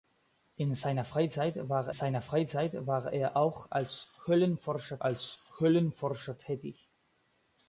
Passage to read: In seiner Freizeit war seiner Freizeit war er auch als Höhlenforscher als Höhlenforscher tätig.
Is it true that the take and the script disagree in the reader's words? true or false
false